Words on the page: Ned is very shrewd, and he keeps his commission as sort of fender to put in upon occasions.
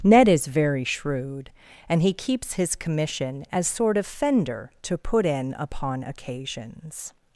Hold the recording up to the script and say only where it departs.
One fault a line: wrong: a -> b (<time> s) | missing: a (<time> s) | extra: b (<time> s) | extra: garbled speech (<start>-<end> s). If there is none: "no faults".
no faults